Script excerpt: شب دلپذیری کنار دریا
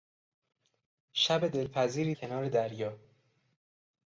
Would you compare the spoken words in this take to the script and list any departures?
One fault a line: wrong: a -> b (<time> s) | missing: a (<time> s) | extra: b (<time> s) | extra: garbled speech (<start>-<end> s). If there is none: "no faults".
no faults